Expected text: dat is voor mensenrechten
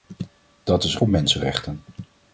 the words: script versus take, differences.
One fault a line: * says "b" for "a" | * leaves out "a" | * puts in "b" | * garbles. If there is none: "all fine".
all fine